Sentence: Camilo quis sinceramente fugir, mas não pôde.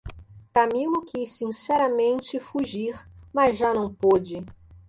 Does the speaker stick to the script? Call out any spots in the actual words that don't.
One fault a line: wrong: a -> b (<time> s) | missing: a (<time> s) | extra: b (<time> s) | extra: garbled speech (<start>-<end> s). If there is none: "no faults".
extra: já (3.5 s)